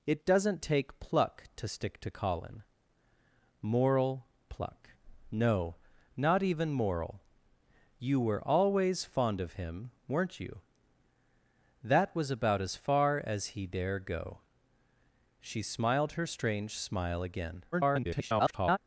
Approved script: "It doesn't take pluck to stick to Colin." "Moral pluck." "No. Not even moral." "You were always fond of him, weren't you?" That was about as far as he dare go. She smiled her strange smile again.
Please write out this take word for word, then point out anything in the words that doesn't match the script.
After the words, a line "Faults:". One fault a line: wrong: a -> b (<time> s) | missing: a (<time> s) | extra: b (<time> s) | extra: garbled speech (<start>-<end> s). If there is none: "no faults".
"It doesn't take pluck to stick to Colin." "Moral pluck." "No. Not even moral." "You were always fond of him, weren't you?" That was about as far as he dare go. She smiled her strange smile again. [garbled]
Faults:
extra: garbled speech (17.7-18.8 s)